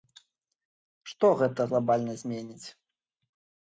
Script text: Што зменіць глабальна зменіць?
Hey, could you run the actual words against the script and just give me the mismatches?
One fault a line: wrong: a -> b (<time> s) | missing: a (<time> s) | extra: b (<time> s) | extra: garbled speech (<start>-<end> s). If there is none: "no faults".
wrong: зменіць -> гэта (1.4 s)